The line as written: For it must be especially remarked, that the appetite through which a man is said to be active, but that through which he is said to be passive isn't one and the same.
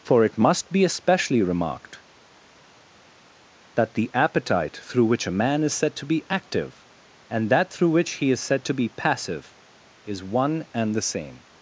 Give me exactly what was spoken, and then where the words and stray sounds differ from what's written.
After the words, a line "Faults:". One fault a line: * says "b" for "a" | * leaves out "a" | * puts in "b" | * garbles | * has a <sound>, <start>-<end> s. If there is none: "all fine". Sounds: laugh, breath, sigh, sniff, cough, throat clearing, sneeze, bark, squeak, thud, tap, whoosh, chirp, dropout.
For it must be especially remarked, that the appetite through which a man is said to be active, and that through which he is said to be passive is one and the same.
Faults:
* says "and" for "but"
* says "is" for "isn't"